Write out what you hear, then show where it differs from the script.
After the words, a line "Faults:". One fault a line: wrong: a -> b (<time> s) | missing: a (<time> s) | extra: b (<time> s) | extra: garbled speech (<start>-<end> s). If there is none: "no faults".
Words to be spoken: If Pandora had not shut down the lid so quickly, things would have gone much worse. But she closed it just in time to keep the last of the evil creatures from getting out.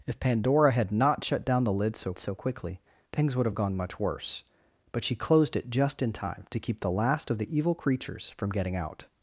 If Pandora had not shut down the lid so so quickly, things would have gone much worse. But she closed it just in time to keep the last of the evil creatures from getting out.
Faults:
extra: so (2.2 s)